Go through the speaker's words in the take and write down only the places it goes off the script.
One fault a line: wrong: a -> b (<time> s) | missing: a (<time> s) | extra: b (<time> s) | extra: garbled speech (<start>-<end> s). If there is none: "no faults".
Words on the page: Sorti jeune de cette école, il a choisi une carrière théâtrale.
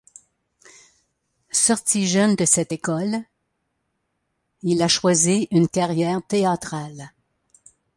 no faults